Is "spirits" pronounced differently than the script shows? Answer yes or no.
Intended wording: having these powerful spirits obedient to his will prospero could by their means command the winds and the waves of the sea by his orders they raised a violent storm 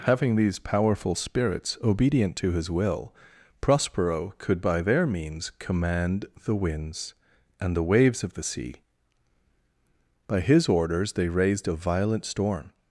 no